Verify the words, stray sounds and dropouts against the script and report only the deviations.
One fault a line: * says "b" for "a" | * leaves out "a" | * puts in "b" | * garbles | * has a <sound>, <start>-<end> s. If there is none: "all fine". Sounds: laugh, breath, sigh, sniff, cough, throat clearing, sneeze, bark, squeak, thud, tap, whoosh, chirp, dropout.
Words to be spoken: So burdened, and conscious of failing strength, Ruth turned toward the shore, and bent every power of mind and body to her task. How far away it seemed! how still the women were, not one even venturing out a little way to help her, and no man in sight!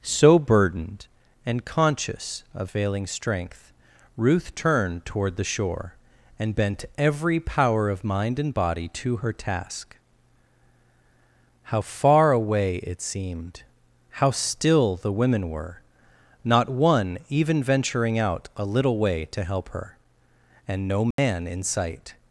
* has a dropout, 21.1-21.2 s